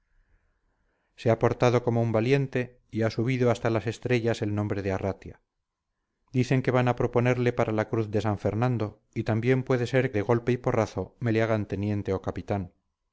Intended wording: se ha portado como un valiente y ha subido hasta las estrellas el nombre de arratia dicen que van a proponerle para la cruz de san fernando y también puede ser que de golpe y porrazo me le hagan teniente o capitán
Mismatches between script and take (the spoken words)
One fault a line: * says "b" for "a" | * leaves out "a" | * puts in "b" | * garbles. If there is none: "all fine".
* leaves out "que"